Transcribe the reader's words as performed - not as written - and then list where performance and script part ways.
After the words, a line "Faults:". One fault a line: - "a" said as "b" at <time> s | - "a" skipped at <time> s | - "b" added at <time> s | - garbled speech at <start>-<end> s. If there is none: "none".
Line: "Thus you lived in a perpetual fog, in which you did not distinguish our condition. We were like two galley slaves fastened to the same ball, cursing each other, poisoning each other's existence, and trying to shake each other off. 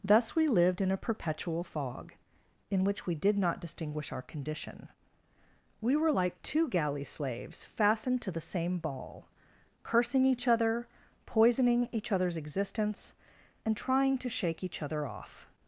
"Thus we lived in a perpetual fog, in which we did not distinguish our condition. We were like two galley slaves fastened to the same ball, cursing each other, poisoning each other's existence, and trying to shake each other off.
Faults:
- "you" said as "we" at 0.3 s
- "you" said as "we" at 3.0 s